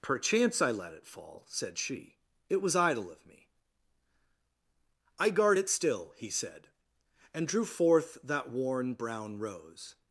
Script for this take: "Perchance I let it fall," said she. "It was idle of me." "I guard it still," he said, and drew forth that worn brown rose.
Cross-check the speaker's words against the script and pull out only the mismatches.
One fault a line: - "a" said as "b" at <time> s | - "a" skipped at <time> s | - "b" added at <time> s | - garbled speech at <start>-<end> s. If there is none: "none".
none